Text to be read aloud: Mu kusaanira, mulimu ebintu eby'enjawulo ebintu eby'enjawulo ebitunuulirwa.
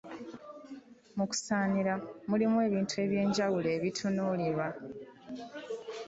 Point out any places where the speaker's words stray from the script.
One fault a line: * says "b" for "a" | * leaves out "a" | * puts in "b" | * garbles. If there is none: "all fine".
* leaves out "ebintu eby'enjawulo"